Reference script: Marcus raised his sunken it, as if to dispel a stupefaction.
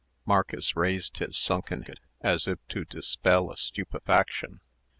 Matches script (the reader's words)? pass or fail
pass